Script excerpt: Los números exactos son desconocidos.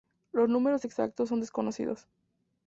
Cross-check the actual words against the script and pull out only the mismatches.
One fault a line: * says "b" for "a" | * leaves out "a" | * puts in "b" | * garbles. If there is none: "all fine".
all fine